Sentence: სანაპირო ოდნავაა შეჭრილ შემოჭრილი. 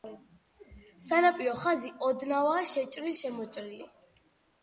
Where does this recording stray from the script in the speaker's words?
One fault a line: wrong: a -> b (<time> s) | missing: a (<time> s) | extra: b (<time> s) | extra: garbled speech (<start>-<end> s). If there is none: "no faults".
extra: ხაზი (1.6 s)